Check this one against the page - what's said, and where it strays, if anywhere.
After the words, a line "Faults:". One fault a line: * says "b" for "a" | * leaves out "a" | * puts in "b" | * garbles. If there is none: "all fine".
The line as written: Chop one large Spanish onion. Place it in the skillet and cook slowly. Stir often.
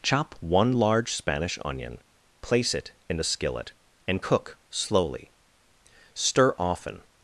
Chop one large Spanish onion. Place it in a skillet and cook slowly. Stir often.
Faults:
* says "a" for "the"